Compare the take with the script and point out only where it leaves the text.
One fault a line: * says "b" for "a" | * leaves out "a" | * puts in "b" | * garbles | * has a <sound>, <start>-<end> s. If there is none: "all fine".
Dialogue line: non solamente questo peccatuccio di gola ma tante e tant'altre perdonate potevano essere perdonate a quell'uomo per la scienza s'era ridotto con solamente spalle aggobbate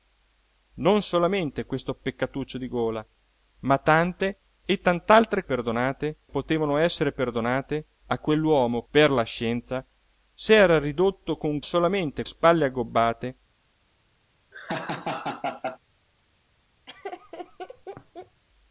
* has a laugh, 14.5-15.8 s
* has a laugh, 16.9-18.4 s